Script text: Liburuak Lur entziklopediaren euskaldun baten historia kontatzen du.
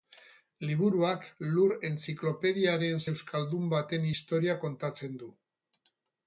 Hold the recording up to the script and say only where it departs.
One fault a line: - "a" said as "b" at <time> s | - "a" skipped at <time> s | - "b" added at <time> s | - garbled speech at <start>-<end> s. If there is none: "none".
none